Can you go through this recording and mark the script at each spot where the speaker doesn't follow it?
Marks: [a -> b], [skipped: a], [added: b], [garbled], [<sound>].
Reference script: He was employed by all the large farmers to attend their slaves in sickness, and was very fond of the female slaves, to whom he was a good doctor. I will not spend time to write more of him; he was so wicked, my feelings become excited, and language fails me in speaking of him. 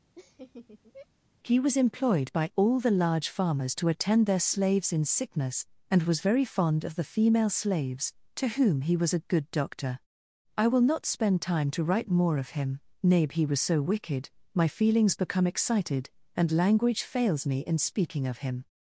[laugh] He was employed by all the large farmers to attend their slaves in sickness, and was very fond of the female slaves, to whom he was a good doctor. I will not spend time to write more of him; [added: nay] he was so wicked, my feelings become excited, and language fails me in speaking of him.